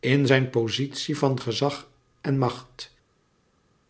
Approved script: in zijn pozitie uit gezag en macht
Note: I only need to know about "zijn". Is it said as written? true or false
true